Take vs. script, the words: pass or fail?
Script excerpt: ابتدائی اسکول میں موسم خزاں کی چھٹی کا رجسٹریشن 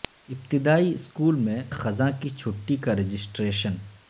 fail